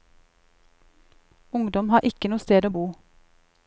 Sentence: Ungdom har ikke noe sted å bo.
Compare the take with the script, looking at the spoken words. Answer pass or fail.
pass